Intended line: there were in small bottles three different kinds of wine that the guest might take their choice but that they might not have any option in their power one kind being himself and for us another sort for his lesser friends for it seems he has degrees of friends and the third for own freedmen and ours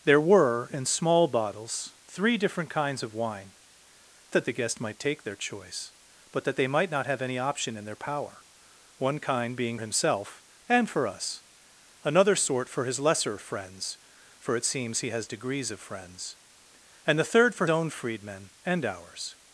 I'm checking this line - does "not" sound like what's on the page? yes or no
yes